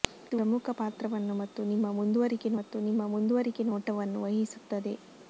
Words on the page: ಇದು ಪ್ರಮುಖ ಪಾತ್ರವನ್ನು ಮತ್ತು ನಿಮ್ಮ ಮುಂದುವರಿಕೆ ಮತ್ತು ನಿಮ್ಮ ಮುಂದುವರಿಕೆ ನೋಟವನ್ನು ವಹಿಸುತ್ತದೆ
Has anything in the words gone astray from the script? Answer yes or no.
no